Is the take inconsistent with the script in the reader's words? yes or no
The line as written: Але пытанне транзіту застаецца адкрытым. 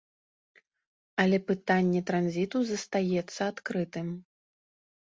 no